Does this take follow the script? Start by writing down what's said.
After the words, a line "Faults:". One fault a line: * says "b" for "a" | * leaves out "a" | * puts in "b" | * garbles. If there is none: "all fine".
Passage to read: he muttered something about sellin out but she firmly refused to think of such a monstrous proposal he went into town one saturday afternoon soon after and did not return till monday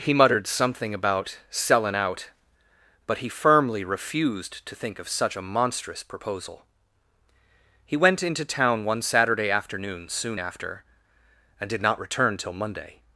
he muttered something about sellin out but he firmly refused to think of such a monstrous proposal he went into town one saturday afternoon soon after and did not return till monday
Faults:
* says "he" for "she"